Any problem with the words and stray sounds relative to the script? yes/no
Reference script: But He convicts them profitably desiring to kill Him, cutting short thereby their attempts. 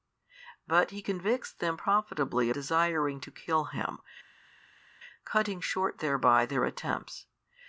no